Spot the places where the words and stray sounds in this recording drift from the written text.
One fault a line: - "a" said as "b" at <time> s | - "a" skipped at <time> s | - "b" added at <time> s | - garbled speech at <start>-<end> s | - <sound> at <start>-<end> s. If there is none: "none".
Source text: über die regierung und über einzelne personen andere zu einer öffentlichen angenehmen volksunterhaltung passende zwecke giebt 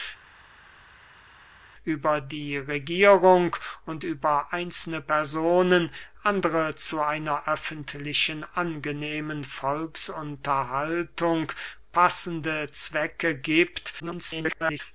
- garbled speech at 14.0-14.8 s